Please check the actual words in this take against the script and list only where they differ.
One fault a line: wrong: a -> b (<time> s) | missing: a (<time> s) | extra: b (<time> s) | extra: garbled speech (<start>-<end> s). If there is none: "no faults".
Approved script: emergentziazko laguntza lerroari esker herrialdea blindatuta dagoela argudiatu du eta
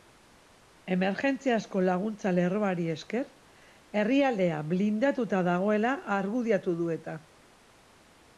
no faults